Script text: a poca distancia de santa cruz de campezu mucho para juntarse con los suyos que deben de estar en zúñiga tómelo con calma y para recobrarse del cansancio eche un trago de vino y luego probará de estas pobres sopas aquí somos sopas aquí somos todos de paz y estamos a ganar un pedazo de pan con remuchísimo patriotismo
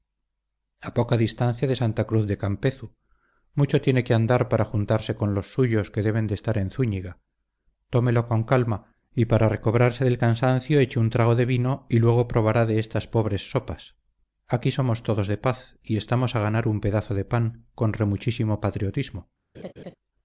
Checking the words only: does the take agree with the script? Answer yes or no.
no